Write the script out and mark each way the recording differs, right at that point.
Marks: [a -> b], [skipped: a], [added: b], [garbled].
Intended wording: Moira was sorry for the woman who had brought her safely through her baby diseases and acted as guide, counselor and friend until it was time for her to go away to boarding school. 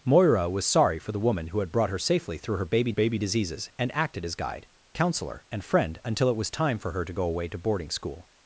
Moira was sorry for the woman who had brought her safely through her baby [added: baby] diseases and acted as guide, counselor and friend until it was time for her to go away to boarding school.